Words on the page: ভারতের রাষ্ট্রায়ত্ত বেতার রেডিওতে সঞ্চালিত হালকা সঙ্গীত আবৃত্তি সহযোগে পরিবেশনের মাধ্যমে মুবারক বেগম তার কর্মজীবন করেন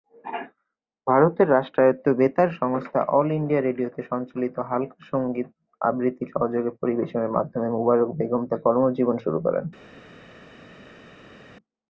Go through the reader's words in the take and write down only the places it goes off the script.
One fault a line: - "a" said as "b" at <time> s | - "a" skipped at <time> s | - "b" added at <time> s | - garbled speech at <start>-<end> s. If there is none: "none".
- "সংস্থা অল ইন্ডিয়া" added at 2.6 s
- "শুরু" added at 9.2 s